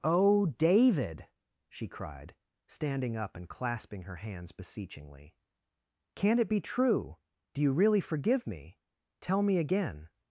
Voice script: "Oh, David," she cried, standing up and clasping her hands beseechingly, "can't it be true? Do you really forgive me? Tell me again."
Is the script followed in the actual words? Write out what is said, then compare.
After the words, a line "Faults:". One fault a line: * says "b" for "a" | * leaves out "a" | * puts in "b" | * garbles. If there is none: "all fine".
"Oh, David," she cried, standing up and clasping her hands beseechingly, "can't it be true? Do you really forgive me? Tell me again."
Faults:
all fine